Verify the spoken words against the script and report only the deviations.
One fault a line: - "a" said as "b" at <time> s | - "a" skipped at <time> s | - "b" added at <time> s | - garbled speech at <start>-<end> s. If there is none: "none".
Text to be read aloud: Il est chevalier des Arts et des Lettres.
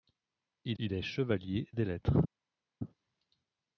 - "il" added at 0.8 s
- "des Arts" skipped at 1.7 s